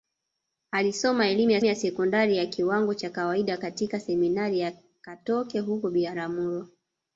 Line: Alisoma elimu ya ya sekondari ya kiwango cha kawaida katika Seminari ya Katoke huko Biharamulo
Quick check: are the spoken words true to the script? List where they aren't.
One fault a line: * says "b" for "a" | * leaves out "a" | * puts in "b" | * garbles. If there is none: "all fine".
all fine